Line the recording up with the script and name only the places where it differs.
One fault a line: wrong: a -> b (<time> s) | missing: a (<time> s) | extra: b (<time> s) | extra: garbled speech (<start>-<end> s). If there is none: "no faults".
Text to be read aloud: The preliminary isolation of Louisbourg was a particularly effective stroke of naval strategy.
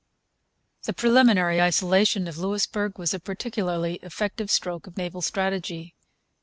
no faults